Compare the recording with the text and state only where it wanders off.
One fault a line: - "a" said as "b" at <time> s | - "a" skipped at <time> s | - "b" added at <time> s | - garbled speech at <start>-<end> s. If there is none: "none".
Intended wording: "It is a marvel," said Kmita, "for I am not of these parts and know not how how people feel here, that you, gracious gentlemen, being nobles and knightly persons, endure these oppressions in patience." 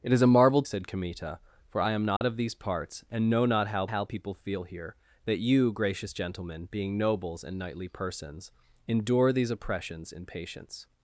none